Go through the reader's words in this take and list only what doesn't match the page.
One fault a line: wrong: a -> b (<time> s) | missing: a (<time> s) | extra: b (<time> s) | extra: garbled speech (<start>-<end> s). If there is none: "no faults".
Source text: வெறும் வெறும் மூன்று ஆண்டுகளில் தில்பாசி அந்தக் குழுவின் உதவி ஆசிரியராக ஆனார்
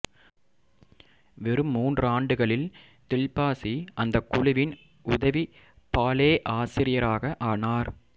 missing: வெறும் (1.7 s)
extra: பாலே (5.9 s)